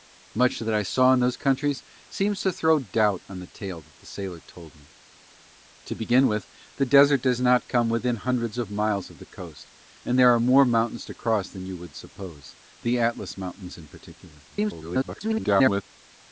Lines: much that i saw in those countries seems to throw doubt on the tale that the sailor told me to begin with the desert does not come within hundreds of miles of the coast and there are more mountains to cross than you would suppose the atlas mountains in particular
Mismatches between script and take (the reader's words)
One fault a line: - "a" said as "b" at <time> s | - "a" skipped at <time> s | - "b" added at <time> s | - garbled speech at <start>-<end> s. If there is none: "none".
- garbled speech at 14.5-15.8 s